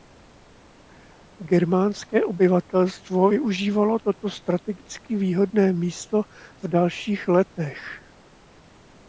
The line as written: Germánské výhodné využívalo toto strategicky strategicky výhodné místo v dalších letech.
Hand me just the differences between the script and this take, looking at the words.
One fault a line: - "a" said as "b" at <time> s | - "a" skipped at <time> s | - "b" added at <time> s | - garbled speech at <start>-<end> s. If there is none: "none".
- "výhodné" said as "obyvatelstvo" at 2.2 s
- "strategicky" skipped at 5.2 s